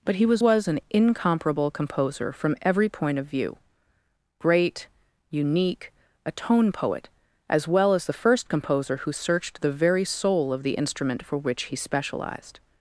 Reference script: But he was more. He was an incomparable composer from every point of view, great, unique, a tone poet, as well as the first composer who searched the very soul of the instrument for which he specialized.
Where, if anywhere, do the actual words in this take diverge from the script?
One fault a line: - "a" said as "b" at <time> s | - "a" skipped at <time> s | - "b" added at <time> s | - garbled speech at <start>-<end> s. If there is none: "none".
- "more He" skipped at 0.4 s